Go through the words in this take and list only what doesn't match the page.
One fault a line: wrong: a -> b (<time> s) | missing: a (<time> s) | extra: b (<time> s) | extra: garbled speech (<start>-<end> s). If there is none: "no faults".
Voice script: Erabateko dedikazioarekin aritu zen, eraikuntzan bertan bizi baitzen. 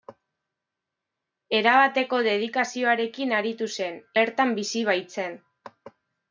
missing: eraikuntzan (4.0 s)